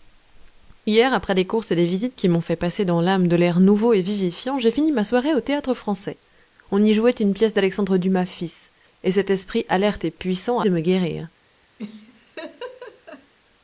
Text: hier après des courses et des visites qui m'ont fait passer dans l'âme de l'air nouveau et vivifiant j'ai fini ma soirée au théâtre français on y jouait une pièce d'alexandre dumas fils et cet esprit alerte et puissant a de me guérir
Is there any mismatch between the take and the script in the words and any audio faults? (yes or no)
yes